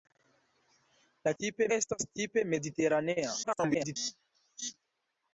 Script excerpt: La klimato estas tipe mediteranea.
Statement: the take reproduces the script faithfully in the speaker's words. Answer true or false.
false